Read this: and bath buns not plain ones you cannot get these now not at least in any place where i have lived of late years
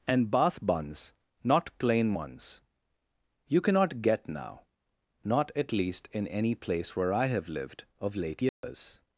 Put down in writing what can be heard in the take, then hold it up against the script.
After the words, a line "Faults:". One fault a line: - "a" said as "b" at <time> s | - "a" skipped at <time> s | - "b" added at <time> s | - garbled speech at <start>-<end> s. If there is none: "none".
and bath buns not plain ones you cannot get now not at least in any place where i have lived of late years
Faults:
- "these" skipped at 4.3 s